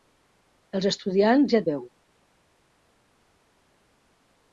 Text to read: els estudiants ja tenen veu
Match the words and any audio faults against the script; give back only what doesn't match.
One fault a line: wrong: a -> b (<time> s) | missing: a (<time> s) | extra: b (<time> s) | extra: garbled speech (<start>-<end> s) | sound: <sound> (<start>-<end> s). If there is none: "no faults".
missing: tenen (1.6 s)